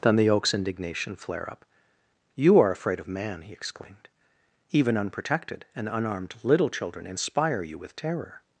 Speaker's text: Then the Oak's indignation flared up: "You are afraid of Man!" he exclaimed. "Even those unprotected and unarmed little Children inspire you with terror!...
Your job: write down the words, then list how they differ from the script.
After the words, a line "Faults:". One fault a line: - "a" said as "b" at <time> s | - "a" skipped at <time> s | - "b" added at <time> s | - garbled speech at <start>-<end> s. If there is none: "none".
Then the Oak's indignation flare up: "You are afraid of Man!" he exclaimed. "Even unprotected and unarmed little Children inspire you with terror!...
Faults:
- "flared" said as "flare" at 1.1 s
- "those" skipped at 5.0 s